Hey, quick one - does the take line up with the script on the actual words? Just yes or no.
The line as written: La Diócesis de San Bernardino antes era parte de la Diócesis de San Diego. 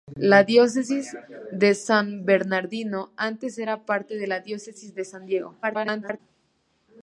no